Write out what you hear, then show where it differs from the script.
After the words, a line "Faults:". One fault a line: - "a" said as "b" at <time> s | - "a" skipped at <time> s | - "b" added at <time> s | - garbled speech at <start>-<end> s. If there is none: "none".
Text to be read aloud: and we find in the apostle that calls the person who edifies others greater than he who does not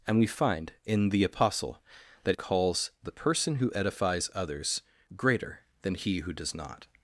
and we find in the apostle that calls the person who edifies others greater than he who does not
Faults:
none